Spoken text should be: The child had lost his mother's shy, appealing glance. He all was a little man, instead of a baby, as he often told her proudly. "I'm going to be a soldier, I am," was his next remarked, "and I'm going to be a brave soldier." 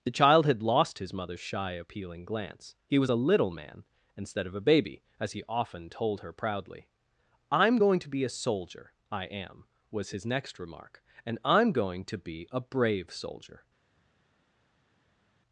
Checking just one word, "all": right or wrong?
wrong